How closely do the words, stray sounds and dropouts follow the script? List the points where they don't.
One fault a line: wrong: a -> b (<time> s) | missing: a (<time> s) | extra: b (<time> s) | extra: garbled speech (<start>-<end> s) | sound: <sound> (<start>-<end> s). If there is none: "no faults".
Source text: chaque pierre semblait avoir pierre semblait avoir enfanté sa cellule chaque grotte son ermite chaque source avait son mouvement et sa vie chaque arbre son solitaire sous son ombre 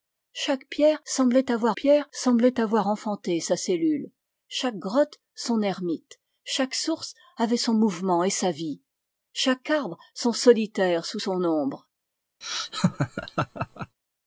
sound: laugh (12.4-14.0 s)